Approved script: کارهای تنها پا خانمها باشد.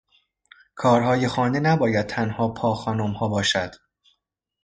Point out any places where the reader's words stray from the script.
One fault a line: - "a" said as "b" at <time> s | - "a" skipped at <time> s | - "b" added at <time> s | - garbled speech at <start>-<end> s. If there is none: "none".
- "خانه نباید" added at 1.2 s